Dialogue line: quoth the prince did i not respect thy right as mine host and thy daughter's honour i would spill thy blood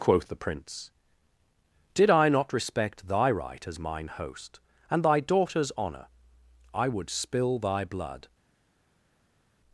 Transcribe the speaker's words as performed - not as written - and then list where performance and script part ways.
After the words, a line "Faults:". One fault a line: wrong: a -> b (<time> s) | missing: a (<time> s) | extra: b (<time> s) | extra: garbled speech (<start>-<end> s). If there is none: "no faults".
quoth the prince did i not respect thy right as mine host and thy daughter's honour i would spill thy blood
Faults:
no faults